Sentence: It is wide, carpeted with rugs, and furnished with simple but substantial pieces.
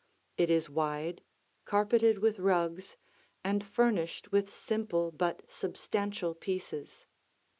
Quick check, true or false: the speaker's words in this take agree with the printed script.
true